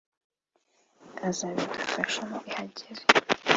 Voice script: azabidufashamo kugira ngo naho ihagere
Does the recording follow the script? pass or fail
fail